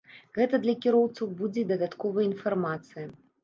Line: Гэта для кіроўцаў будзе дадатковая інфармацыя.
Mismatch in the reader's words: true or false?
false